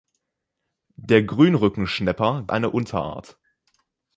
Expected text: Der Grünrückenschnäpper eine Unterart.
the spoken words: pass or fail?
pass